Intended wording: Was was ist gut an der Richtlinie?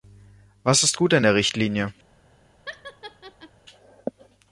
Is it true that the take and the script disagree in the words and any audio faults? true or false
true